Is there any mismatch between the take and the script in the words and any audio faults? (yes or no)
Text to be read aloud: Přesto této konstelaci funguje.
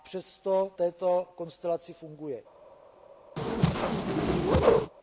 yes